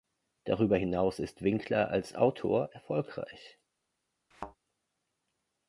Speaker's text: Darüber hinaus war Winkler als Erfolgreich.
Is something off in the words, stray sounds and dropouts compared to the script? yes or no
yes